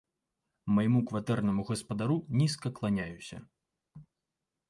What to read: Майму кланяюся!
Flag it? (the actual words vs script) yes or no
yes